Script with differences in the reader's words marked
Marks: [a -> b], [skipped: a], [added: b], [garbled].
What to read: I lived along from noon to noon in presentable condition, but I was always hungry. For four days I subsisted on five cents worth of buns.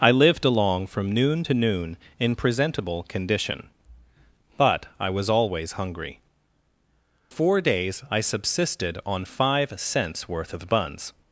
I lived along from noon to noon in presentable condition, but I was always hungry. [skipped: For] four days I subsisted on five cents worth of buns.